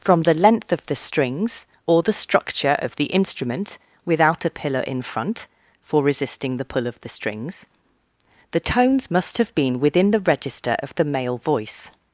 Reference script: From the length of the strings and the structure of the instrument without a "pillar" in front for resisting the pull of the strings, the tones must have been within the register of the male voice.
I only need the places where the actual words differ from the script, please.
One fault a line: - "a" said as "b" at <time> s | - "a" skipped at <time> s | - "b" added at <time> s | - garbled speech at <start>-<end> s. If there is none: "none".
- "and" said as "or" at 1.9 s